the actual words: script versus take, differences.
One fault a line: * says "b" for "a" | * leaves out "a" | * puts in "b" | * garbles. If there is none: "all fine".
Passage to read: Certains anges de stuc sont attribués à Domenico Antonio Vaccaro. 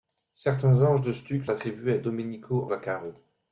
* leaves out "sont"
* leaves out "Antonio"